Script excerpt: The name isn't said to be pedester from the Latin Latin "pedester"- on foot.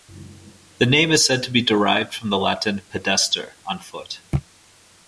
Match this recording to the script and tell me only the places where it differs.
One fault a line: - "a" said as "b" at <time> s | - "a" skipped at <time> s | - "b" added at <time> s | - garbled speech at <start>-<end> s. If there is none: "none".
- "isn't" said as "is" at 1.1 s
- "pedester" said as "derived" at 1.6 s
- "Latin" skipped at 2.8 s